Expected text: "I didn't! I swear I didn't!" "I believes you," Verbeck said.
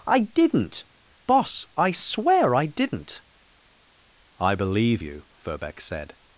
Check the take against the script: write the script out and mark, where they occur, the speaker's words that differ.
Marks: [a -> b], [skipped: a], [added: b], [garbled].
"I didn't! [added: Boss] I swear I didn't!" "I [believes -> believe] you," Verbeck said.